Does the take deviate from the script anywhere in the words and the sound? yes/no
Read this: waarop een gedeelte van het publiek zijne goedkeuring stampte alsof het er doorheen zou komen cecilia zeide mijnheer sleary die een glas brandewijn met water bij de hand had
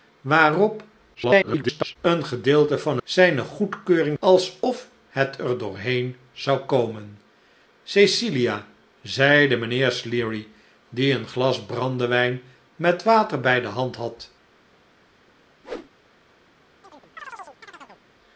yes